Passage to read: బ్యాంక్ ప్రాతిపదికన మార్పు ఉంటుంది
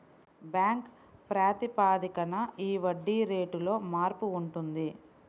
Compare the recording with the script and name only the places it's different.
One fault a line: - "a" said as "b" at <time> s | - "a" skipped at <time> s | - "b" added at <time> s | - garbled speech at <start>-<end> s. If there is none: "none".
- "ఈ వడ్డీ రేటులో" added at 2.6 s